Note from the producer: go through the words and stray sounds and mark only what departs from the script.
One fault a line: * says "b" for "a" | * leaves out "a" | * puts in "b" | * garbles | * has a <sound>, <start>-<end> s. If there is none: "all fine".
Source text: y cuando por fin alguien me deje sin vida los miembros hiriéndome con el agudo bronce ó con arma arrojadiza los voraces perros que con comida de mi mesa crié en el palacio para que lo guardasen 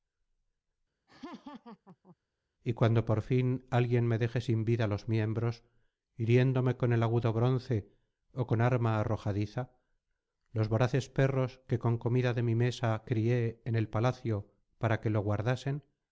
* has a laugh, 1.1-2.2 s